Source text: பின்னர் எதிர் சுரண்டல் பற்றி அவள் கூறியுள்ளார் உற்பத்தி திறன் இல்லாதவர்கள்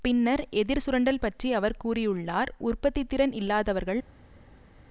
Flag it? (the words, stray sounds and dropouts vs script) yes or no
yes